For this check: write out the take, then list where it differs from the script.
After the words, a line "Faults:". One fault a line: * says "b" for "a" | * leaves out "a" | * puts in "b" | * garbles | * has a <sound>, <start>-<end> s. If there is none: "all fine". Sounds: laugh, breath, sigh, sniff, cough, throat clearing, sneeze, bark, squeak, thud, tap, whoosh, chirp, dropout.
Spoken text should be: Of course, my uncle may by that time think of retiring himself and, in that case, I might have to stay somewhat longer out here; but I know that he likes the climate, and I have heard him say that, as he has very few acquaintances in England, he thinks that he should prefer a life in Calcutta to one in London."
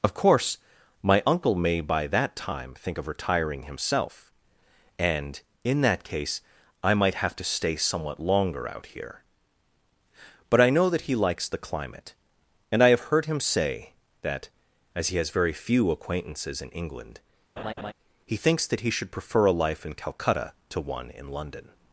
Of course, my uncle may by that time think of retiring himself and, in that case, I might have to stay somewhat longer out here; but I know that he likes the climate, and I have heard him say that, as he has very few acquaintances in England, he thinks that he should prefer a life in Calcutta to one in London."
Faults:
* has a laugh, 17.6-17.9 s